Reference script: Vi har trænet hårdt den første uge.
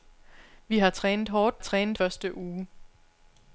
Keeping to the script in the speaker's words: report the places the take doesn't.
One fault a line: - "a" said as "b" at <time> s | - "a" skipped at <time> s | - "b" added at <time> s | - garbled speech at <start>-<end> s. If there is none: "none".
- "den" said as "trænet" at 1.6 s